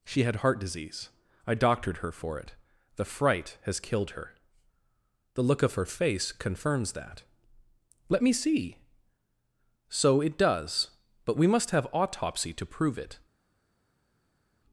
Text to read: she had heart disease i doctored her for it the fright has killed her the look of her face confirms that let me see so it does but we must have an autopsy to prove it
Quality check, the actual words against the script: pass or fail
fail